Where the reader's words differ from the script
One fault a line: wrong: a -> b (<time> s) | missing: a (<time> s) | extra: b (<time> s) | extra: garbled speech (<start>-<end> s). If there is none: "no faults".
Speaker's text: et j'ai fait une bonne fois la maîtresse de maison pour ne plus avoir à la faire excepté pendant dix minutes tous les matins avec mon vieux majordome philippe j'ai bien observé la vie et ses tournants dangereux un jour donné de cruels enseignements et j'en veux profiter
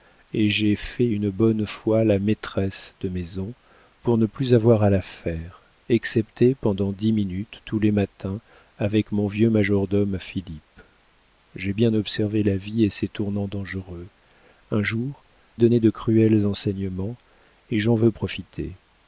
no faults